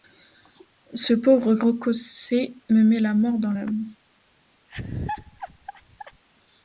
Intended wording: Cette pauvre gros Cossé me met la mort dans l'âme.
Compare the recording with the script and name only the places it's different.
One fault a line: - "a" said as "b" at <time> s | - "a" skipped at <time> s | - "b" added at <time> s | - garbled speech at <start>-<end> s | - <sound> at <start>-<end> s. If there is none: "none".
- "Cette" said as "Ce" at 0.9 s
- laugh at 4.7-6.2 s